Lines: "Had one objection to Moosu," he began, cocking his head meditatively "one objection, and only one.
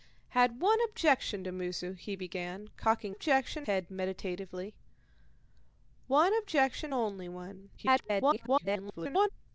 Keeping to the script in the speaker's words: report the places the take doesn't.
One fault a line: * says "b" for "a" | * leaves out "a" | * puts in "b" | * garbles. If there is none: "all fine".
* says "objection" for "his"
* leaves out "and"
* garbles